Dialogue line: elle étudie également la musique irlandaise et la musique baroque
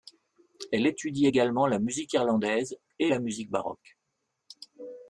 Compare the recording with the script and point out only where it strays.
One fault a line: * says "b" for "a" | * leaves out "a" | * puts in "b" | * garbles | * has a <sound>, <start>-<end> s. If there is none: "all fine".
all fine